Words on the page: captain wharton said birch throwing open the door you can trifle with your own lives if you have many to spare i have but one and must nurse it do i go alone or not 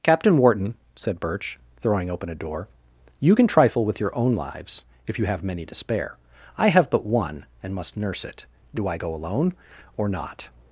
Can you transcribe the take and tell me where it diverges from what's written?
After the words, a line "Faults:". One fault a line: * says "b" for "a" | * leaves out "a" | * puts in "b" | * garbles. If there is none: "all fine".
captain wharton said birch throwing open a door you can trifle with your own lives if you have many to spare i have but one and must nurse it do i go alone or not
Faults:
* says "a" for "the"